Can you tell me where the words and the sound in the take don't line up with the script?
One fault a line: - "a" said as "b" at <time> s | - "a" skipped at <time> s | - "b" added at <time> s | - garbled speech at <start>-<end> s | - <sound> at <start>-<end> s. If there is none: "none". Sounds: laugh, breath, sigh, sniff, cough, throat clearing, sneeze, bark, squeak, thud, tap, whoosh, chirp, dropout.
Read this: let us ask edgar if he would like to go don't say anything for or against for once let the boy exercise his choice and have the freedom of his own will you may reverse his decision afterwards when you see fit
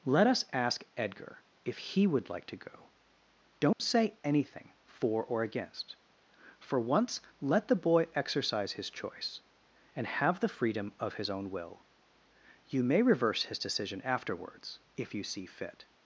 - dropout at 3.7-3.8 s
- "when" said as "if" at 15.0 s